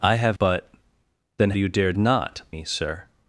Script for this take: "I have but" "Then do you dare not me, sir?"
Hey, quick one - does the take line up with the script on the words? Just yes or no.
yes